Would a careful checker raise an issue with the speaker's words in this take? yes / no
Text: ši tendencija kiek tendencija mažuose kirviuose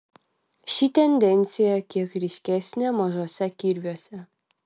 yes